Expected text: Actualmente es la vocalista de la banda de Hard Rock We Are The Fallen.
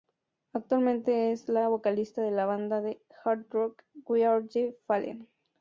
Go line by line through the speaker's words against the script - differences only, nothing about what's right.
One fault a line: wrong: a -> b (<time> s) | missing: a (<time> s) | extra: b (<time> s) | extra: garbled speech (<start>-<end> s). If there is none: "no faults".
no faults